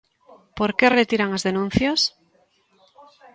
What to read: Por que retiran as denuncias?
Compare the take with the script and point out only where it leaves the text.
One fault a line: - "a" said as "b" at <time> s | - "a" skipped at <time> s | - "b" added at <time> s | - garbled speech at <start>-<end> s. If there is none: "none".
none